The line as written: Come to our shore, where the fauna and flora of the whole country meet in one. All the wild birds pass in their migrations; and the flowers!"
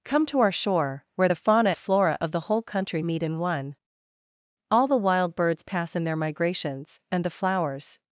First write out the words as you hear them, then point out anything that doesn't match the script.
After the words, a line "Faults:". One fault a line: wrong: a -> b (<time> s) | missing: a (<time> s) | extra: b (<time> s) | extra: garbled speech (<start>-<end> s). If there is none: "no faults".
Come to our shore, where the fauna flora of the whole country meet in one. All the wild birds pass in their migrations; and the flowers!"
Faults:
missing: and (1.7 s)